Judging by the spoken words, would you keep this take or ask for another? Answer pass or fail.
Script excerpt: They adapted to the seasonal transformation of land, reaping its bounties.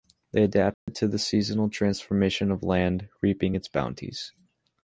pass